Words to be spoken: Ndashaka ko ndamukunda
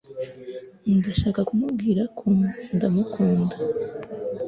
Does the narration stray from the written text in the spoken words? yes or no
yes